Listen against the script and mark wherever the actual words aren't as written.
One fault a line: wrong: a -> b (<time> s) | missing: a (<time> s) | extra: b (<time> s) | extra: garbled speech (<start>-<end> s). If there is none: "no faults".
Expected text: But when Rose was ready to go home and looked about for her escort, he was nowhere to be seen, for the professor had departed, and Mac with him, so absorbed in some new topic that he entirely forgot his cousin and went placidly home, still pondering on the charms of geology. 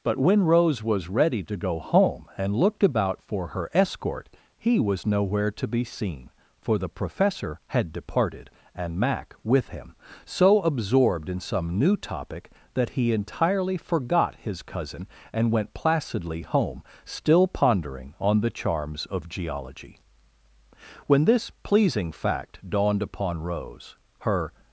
extra: When this pleasing fact dawned upon Rose her (21.1 s)